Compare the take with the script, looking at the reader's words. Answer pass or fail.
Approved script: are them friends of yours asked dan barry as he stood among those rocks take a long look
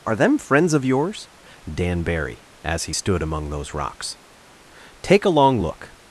fail